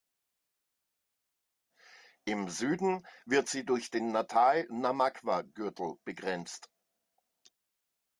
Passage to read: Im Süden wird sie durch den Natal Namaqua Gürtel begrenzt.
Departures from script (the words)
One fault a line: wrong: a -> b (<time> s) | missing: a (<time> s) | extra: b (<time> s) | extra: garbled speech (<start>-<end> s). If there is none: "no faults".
no faults